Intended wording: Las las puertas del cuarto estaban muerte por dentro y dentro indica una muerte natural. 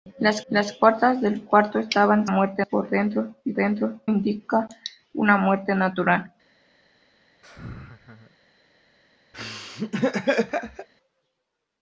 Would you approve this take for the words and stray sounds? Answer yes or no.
no